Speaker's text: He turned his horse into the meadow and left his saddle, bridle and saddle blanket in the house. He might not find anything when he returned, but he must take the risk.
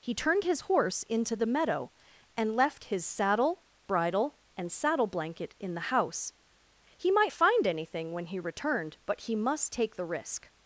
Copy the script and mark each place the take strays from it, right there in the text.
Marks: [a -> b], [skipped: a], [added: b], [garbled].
He turned his horse into the meadow and left his saddle, bridle and saddle blanket in the house. He might [skipped: not] find anything when he returned, but he must take the risk.